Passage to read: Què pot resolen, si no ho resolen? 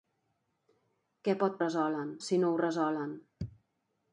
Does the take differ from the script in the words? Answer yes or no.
no